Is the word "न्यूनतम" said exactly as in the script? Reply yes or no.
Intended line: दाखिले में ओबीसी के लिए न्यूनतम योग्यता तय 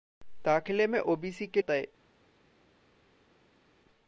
no